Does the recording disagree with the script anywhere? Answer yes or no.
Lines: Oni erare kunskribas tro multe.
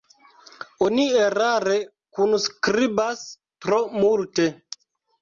no